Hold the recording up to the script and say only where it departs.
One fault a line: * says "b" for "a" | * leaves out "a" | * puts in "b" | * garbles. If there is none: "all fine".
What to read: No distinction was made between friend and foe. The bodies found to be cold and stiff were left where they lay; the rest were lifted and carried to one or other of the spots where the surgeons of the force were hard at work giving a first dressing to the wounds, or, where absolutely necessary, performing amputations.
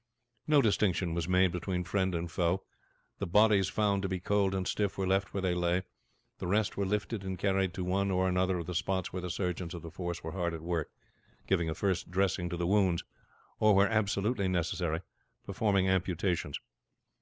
all fine